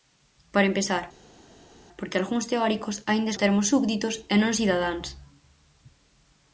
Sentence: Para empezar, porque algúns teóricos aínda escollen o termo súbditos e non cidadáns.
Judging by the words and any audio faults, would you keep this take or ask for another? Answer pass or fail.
fail